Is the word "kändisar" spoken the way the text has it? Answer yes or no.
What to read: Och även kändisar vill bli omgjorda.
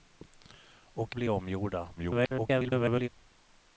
no